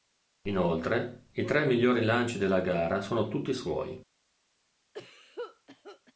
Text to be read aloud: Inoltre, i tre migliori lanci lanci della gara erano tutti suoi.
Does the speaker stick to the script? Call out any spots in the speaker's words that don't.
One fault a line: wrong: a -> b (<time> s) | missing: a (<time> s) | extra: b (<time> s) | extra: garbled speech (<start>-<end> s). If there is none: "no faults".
missing: lanci (2.4 s)
wrong: erano -> sono (3.0 s)